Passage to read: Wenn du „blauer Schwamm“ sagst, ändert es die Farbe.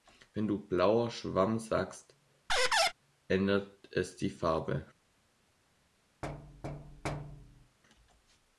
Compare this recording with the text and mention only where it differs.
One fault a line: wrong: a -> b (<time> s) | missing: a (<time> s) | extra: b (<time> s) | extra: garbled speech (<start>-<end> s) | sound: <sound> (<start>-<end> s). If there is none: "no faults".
sound: squeak (2.5-2.9 s)
sound: thud (6.2-7.8 s)